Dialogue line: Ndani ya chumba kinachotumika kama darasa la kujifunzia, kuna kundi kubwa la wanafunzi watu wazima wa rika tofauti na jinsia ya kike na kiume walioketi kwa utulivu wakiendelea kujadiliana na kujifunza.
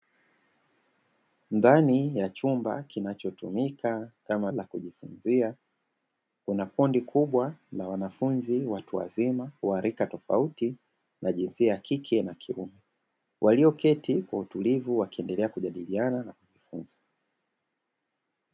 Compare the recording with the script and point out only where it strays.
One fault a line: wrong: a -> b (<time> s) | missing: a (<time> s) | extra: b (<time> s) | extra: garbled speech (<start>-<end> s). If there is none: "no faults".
missing: darasa (4.5 s)